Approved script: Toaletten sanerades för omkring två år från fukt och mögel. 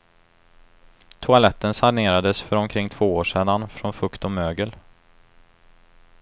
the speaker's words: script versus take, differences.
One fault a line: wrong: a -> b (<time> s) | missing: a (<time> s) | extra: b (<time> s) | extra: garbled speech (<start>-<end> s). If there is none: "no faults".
extra: sedan (3.2 s)